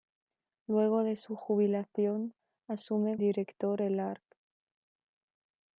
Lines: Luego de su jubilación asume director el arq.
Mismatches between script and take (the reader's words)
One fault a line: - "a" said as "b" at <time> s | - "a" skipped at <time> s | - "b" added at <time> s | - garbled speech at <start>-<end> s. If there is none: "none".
none